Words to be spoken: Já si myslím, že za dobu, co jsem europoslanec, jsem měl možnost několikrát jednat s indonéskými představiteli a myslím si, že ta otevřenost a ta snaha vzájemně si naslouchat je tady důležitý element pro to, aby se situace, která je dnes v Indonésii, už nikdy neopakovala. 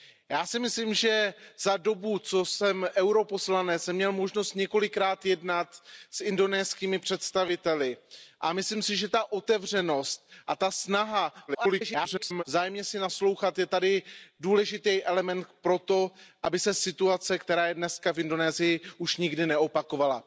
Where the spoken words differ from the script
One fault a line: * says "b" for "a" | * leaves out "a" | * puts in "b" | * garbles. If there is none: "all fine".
* garbles